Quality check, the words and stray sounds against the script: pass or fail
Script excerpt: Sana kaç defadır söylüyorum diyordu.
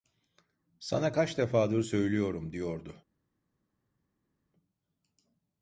pass